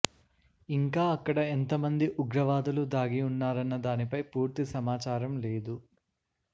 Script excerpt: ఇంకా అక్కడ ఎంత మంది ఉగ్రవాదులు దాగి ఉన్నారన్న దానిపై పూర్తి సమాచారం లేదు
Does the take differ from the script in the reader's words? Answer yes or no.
no